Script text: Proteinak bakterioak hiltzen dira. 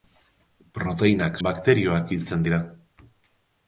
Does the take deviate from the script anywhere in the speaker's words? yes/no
no